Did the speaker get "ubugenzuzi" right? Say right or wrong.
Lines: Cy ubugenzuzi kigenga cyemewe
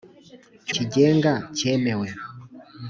wrong